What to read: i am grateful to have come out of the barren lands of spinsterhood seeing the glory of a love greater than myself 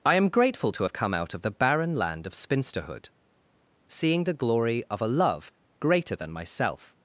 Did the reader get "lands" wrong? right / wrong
wrong